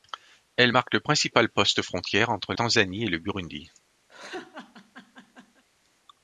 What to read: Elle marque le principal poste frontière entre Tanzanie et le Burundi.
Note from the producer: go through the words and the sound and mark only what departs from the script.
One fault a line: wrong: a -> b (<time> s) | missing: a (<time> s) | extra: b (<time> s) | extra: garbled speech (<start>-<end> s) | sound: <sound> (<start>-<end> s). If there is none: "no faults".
sound: laugh (4.1-5.6 s)